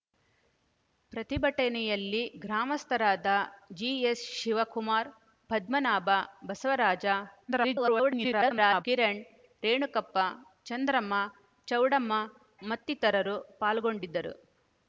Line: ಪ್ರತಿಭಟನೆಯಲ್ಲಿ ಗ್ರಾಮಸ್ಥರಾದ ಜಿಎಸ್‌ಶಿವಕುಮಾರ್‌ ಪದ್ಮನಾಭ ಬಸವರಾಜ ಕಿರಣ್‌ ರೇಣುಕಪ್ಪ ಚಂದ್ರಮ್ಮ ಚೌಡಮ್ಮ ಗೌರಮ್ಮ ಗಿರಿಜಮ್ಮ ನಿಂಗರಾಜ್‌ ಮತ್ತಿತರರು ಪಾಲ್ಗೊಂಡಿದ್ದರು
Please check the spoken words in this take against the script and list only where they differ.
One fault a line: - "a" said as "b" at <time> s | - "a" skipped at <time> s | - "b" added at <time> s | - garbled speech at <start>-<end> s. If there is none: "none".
- garbled speech at 7.5-8.8 s
- "ಗೌರಮ್ಮ ಗಿರಿಜಮ್ಮ ನಿಂಗರಾಜ್" skipped at 12.1 s